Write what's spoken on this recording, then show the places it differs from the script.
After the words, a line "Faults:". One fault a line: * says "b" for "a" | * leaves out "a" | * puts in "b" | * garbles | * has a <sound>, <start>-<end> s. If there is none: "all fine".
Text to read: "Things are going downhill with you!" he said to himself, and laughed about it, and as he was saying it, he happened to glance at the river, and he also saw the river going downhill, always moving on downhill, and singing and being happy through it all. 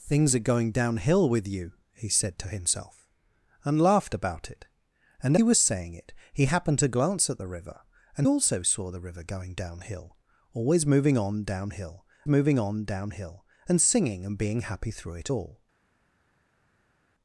"Things are going downhill with you!" he said to himself, and laughed about it, and he was saying it, he happened to glance at the river, and also saw the river going downhill, always moving on downhill moving on downhill, and singing and being happy through it all.
Faults:
* leaves out "as"
* leaves out "he"
* puts in "moving on downhill"